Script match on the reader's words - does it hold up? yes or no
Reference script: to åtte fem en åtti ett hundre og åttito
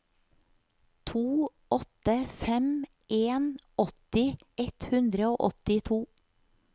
yes